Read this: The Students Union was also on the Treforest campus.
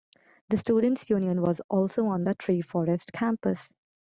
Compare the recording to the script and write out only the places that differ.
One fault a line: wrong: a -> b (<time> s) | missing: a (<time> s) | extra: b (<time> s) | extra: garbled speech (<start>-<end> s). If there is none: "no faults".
no faults